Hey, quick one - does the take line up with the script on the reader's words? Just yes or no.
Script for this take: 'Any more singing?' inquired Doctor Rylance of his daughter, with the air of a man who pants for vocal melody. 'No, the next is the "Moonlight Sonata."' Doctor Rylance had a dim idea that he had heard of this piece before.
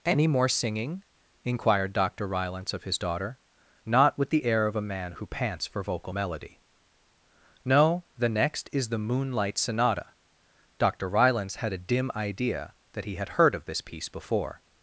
no